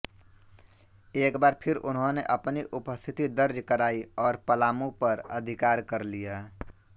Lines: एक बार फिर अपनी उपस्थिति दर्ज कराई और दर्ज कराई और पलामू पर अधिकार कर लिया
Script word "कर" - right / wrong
right